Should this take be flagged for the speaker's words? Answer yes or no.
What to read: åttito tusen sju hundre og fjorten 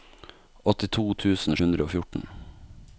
yes